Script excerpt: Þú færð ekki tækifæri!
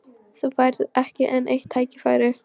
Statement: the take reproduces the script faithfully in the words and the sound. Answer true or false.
false